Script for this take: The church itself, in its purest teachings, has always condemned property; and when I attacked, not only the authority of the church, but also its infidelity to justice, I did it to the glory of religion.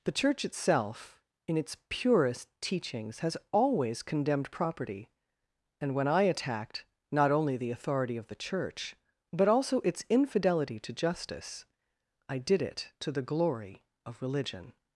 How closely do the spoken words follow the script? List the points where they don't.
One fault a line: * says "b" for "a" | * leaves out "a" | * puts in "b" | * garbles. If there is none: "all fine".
all fine